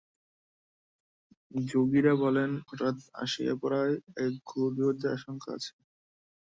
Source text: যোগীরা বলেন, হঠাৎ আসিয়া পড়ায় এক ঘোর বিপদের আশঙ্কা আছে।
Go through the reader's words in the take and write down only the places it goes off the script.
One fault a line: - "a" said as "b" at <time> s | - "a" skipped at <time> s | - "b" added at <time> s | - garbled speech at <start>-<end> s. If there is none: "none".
none